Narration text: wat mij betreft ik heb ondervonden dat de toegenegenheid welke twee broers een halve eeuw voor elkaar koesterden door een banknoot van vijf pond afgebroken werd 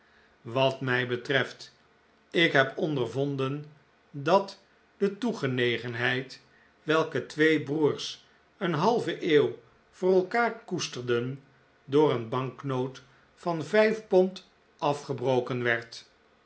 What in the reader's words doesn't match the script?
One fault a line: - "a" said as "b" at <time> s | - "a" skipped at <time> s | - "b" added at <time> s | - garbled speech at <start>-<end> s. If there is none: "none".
none